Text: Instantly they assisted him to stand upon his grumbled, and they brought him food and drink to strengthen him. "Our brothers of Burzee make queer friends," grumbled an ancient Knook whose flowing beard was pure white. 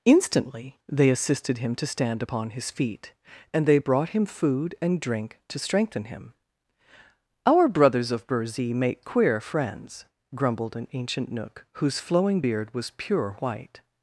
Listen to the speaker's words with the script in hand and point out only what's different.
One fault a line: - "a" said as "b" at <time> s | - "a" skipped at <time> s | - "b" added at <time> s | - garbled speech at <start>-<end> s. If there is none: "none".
- "grumbled" said as "feet" at 2.7 s